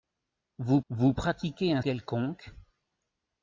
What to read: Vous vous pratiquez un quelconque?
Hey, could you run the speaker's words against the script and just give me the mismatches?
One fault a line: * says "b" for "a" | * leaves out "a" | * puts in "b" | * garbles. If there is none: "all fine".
all fine